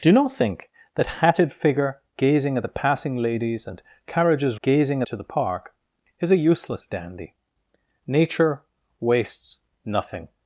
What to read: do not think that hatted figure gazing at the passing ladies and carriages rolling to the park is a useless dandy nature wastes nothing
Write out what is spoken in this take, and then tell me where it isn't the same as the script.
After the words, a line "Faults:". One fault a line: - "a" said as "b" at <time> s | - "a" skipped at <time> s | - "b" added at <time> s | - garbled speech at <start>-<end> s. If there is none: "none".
do not think that hatted figure gazing at the passing ladies and carriages gazing to the park is a useless dandy nature wastes nothing
Faults:
- "rolling" said as "gazing" at 4.6 s